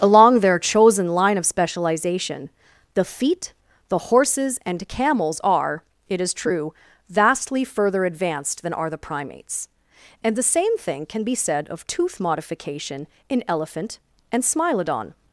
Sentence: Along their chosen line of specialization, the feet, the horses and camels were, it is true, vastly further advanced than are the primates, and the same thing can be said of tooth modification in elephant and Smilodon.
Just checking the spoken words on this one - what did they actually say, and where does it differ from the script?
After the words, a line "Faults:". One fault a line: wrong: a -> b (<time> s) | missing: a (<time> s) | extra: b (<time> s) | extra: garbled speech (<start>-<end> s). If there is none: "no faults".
Along their chosen line of specialization, the feet, the horses and camels are, it is true, vastly further advanced than are the primates, and the same thing can be said of tooth modification in elephant and Smilodon.
Faults:
wrong: were -> are (5.4 s)